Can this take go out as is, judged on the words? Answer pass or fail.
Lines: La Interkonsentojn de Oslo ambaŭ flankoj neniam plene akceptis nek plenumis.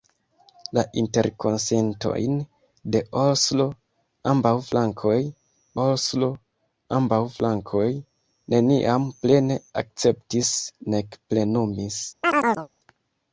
fail